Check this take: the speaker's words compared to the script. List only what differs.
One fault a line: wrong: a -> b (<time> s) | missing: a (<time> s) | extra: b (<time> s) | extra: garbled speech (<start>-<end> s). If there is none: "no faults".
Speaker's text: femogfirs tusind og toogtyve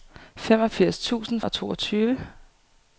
no faults